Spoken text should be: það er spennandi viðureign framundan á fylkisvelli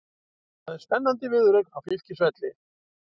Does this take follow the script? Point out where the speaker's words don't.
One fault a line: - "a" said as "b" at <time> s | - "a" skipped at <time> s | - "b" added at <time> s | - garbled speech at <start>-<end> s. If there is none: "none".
- "framundan" skipped at 1.7 s